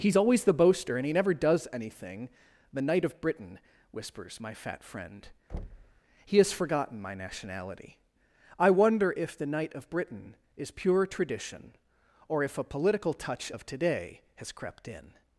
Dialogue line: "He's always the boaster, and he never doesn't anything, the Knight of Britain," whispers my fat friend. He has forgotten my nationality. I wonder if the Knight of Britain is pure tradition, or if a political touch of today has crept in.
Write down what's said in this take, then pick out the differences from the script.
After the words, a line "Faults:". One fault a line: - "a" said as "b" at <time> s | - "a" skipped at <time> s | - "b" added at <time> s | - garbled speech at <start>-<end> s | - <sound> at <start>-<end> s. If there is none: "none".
"He's always the boaster, and he never does anything, the Knight of Britain," whispers my fat friend. He has forgotten my nationality. I wonder if the Knight of Britain is pure tradition, or if a political touch of today has crept in.
Faults:
- "doesn't" said as "does" at 1.3 s
- thud at 5.5-6.0 s